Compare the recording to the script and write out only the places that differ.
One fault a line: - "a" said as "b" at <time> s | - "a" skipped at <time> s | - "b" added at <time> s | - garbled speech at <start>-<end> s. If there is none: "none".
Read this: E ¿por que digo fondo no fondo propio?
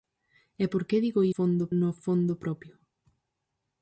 none